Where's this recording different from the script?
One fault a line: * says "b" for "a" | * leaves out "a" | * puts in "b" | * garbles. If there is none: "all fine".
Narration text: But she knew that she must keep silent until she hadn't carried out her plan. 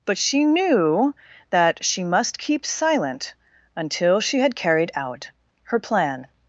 * says "had" for "hadn't"